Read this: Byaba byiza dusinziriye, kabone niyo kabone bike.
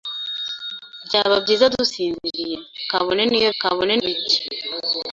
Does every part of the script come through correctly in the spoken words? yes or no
yes